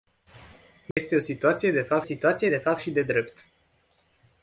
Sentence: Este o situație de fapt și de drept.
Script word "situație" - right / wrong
right